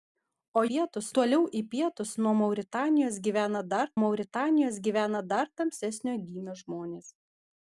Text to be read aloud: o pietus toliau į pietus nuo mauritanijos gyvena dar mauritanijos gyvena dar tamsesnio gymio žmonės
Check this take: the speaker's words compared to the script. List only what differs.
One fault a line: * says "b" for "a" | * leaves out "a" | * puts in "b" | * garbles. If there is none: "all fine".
all fine